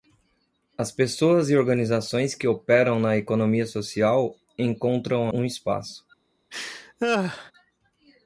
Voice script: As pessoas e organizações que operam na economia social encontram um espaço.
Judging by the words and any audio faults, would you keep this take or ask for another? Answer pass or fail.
fail